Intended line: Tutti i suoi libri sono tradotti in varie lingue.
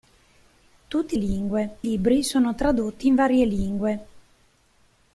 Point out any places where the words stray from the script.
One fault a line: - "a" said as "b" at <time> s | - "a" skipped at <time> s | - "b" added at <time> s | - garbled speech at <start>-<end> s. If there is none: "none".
- "suoi" said as "lingue" at 1.1 s